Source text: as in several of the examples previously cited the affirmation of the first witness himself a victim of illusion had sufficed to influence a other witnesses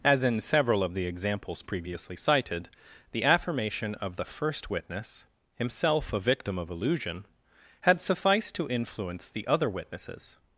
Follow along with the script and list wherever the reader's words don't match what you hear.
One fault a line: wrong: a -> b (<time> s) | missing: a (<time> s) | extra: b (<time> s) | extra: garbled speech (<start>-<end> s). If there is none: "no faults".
wrong: a -> the (9.3 s)